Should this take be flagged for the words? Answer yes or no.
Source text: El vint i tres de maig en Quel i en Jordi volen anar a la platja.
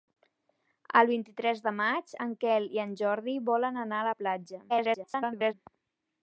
yes